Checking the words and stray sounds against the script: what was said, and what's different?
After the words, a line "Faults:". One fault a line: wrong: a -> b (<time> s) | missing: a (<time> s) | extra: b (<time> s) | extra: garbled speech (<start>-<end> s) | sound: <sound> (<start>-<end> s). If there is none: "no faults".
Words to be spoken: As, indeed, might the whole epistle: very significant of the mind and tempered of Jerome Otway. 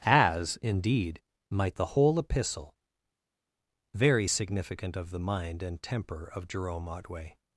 As, indeed, might the whole epistle: very significant of the mind and temper of Jerome Otway.
Faults:
wrong: tempered -> temper (5.8 s)